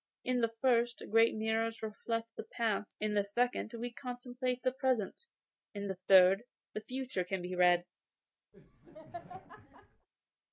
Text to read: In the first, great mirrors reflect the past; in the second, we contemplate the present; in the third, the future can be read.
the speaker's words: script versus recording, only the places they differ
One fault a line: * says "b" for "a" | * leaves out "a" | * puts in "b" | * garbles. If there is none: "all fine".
all fine